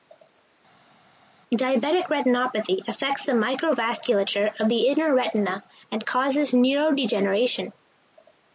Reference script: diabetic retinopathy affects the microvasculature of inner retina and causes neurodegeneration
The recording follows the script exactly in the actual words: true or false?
false